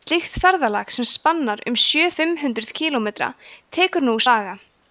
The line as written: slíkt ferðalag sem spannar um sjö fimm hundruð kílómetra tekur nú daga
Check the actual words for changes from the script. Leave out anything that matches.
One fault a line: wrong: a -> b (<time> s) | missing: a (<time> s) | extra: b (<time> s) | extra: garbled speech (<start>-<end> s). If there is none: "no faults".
no faults